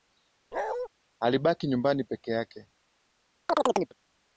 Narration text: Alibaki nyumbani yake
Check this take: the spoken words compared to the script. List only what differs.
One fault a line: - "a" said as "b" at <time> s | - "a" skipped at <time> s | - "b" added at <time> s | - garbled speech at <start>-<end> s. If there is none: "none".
- "peke" added at 2.0 s